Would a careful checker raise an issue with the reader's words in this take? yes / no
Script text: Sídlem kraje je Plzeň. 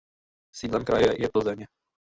no